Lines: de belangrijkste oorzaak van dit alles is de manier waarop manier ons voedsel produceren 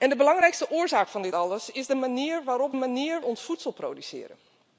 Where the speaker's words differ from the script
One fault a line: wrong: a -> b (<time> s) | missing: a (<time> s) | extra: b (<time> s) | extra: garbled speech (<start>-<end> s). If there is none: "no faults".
no faults